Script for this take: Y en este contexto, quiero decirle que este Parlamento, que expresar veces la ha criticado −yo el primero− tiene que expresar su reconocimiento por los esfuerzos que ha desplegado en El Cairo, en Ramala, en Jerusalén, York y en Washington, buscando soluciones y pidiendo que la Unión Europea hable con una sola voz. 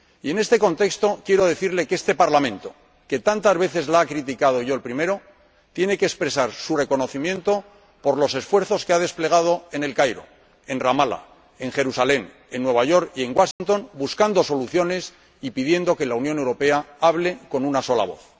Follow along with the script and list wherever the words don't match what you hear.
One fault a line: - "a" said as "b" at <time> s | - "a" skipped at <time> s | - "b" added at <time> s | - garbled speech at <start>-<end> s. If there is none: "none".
- "expresar" said as "tantas" at 3.2 s
- "en Nueva" added at 12.5 s